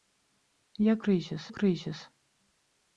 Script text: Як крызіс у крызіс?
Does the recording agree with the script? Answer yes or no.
yes